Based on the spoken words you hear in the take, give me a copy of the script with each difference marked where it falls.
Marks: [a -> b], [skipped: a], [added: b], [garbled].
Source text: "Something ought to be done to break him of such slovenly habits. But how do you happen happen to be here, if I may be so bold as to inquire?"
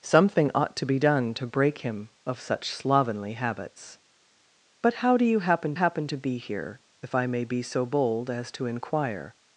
"Something ought to be done to break him of such slovenly habits. But how do you happen happen to be here, if I may be so bold as to inquire?"